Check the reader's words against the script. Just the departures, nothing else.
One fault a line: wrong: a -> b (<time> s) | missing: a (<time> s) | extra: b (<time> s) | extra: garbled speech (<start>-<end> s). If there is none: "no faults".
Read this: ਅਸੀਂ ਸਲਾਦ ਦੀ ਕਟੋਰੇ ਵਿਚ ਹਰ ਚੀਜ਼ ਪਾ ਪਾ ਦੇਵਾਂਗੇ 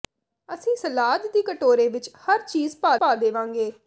no faults